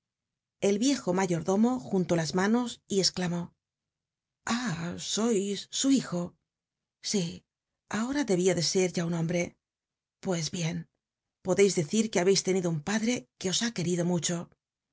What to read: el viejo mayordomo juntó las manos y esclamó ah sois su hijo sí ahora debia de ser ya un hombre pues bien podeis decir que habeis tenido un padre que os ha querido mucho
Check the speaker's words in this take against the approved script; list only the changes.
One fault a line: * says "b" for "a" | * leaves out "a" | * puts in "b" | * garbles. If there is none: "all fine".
all fine